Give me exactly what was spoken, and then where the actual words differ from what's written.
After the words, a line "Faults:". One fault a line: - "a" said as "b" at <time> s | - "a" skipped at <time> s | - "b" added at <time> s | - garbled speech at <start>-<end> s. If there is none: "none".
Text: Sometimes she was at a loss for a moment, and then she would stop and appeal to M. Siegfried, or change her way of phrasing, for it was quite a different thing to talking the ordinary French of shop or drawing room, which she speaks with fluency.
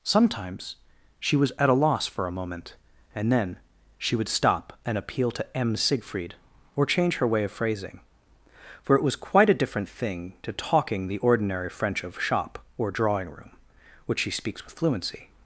Sometimes she was at a loss for a moment, and then she would stop and appeal to M. Siegfried, or change her way of phrasing, for it was quite a different thing to talking the ordinary French of shop or drawing room, which she speaks with fluency.
Faults:
none